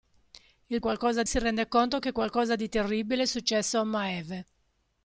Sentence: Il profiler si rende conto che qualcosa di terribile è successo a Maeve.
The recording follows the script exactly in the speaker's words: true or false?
false